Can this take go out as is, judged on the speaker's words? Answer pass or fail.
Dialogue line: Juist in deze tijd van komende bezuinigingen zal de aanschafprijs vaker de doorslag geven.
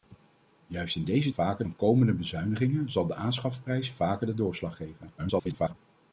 fail